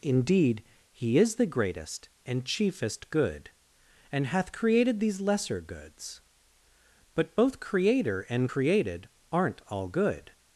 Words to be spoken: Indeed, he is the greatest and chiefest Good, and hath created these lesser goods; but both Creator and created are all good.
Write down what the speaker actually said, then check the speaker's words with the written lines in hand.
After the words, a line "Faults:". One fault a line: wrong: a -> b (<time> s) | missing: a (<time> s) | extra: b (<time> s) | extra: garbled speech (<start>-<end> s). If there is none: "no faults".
Indeed, he is the greatest and chiefest Good, and hath created these lesser goods; but both Creator and created aren't all good.
Faults:
wrong: are -> aren't (9.3 s)